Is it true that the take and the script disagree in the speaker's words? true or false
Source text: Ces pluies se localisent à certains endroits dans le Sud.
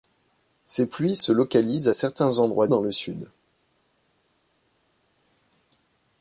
false